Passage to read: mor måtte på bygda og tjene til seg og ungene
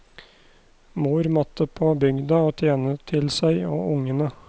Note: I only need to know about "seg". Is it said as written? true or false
true